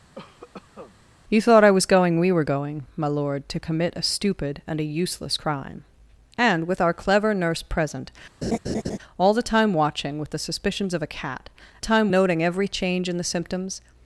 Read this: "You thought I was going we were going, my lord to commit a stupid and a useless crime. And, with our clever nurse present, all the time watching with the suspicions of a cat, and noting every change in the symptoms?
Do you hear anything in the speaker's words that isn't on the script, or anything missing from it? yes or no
yes